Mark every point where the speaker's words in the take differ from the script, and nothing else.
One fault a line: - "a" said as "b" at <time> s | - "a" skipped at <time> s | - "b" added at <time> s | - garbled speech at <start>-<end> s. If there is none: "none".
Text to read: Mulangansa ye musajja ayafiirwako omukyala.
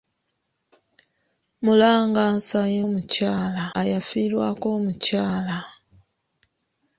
- "musajja" said as "omukyala" at 2.9 s